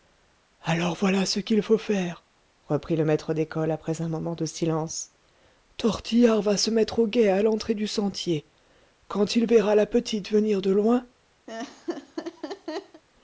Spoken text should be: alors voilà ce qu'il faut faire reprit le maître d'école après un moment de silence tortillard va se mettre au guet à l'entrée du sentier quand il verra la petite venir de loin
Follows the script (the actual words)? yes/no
yes